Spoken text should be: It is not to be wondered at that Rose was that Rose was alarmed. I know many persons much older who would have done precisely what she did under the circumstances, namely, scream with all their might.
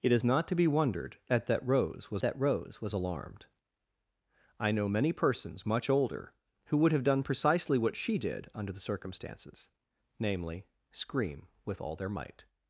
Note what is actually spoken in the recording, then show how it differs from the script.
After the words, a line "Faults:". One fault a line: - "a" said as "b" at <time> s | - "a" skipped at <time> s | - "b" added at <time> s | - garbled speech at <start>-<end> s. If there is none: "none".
It is not to be wondered at that Rose was that Rose was alarmed. I know many persons much older who would have done precisely what she did under the circumstances, namely, scream with all their might.
Faults:
none